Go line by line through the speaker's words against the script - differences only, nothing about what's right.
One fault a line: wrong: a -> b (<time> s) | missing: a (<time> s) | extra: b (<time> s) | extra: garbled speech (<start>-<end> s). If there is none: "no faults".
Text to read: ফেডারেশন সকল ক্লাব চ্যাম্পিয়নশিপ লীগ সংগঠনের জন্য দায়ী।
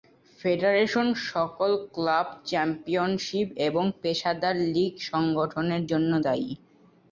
extra: এবং পেশাদার (3.7 s)